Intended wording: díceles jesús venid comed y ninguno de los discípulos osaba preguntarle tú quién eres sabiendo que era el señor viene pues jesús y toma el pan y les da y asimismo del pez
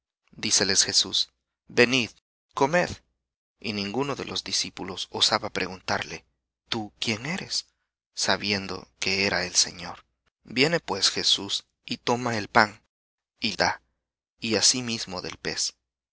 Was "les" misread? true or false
true